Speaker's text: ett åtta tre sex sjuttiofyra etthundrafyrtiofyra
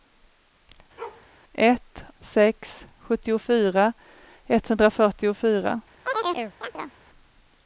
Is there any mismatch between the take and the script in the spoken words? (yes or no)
yes